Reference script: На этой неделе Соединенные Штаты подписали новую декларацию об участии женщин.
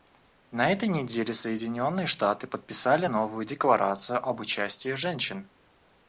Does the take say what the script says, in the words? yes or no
yes